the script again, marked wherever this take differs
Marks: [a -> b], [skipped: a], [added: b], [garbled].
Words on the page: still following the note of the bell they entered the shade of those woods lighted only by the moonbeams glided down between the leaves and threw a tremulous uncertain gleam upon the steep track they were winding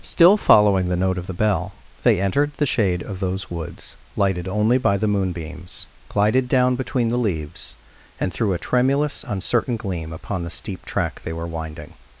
still following the note of the bell they entered the shade of those woods lighted only by the moonbeams glided down between the leaves and threw a tremulous uncertain gleam upon the steep track they were winding